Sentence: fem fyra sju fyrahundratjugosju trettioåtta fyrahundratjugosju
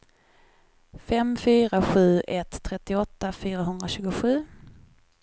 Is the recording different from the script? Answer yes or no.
yes